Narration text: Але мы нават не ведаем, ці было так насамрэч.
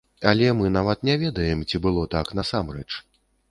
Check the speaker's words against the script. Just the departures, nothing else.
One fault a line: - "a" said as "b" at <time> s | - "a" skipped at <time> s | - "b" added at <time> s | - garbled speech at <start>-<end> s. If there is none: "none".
none